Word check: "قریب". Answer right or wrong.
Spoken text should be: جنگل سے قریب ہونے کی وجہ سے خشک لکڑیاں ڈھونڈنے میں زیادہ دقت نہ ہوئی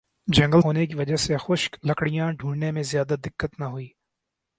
wrong